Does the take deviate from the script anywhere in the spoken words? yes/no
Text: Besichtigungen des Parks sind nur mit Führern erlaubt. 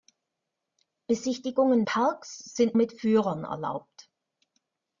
yes